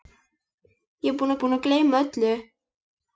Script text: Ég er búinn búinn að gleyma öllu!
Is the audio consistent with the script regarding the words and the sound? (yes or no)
yes